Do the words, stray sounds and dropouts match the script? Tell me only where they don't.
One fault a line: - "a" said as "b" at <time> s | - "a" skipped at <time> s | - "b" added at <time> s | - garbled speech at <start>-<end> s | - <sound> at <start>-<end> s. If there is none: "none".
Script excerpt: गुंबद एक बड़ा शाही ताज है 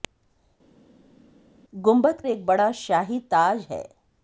none